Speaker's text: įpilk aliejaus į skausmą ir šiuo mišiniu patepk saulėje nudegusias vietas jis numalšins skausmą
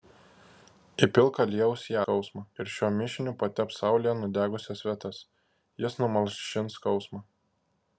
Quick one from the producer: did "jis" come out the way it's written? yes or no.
yes